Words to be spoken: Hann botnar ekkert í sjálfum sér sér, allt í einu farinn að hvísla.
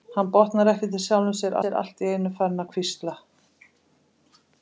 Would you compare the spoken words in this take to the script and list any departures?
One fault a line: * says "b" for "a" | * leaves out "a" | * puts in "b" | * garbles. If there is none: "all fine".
all fine